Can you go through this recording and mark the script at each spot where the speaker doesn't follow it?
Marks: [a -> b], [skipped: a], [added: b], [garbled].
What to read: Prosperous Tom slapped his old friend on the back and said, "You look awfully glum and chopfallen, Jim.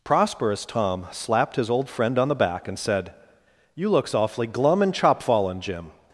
Prosperous Tom slapped his old friend on the back and said, "You [look -> looks] awfully glum and chopfallen, Jim.